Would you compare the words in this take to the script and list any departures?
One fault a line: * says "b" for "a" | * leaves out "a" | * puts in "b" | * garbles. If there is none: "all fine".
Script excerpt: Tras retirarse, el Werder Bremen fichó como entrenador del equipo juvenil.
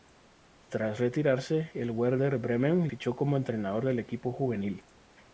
all fine